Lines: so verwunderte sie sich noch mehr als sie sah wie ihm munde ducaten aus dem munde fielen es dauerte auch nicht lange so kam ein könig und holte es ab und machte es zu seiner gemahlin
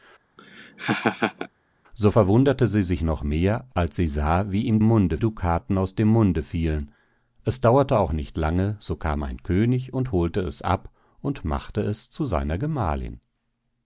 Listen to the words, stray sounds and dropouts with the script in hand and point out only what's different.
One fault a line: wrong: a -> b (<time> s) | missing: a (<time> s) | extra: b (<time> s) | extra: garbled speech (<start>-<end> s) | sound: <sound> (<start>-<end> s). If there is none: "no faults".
sound: laugh (0.4-1.5 s)